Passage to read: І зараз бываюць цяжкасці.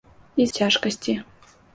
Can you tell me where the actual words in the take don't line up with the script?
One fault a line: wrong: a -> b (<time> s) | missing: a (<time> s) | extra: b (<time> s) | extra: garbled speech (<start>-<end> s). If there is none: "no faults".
missing: зараз бываюць (0.5 s)